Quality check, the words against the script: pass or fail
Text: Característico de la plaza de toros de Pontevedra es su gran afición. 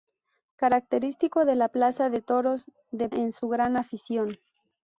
fail